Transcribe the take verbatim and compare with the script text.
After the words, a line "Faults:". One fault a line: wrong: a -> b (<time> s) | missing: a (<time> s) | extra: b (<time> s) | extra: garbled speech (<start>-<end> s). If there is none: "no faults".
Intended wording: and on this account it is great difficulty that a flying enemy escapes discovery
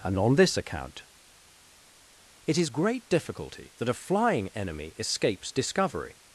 and on this account it is great difficulty that a flying enemy escapes discovery
Faults:
no faults